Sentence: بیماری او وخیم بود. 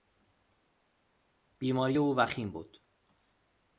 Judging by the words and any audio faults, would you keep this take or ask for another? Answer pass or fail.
pass